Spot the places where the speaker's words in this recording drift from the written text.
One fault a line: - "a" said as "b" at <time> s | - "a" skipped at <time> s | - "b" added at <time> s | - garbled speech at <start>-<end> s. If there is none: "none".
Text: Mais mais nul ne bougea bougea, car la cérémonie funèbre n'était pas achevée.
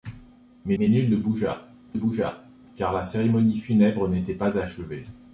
none